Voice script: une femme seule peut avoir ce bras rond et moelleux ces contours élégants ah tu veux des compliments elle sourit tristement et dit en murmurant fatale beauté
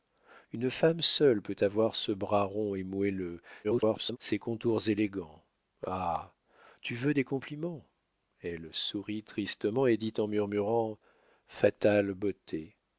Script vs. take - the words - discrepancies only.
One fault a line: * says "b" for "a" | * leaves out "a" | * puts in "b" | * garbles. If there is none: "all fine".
* garbles